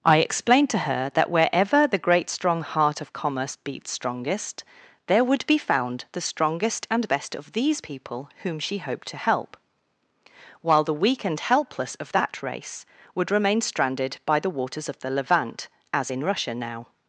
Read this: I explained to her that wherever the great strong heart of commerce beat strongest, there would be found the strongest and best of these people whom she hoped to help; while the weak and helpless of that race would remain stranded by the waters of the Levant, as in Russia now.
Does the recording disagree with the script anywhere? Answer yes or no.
no